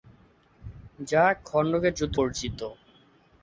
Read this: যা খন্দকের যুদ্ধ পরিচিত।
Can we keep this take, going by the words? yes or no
yes